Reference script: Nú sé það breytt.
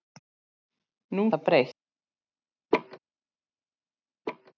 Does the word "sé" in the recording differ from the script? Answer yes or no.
yes